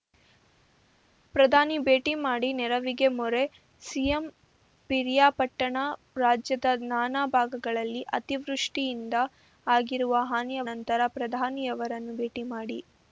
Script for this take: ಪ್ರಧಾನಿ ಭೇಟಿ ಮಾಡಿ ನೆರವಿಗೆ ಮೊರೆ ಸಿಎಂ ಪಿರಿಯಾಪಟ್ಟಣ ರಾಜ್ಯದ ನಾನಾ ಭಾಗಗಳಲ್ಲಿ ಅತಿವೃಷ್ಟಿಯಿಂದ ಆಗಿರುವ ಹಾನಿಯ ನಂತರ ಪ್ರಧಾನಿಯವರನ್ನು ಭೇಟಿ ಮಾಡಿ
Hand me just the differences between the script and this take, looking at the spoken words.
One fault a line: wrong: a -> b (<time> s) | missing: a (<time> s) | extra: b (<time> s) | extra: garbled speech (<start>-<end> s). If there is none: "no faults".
no faults